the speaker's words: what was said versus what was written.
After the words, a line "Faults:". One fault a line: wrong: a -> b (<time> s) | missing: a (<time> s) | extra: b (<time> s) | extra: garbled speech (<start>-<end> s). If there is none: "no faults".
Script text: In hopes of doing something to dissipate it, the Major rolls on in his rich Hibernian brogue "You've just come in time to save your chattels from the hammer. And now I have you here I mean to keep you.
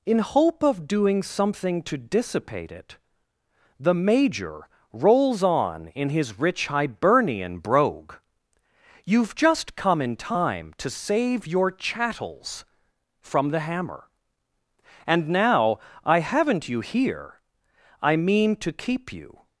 In hope of doing something to dissipate it, the Major rolls on in his rich Hibernian brogue "You've just come in time to save your chattels from the hammer. And now I haven't you here I mean to keep you.
Faults:
wrong: hopes -> hope (0.2 s)
wrong: have -> haven't (16.2 s)